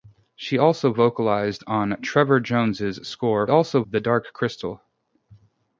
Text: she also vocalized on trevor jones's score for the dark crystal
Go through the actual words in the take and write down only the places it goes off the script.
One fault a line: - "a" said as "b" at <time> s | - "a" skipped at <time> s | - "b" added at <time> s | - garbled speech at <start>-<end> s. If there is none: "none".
- "for" said as "also" at 3.5 s